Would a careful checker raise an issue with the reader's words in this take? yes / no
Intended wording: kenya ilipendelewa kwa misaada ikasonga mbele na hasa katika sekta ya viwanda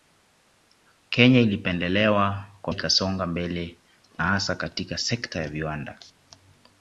yes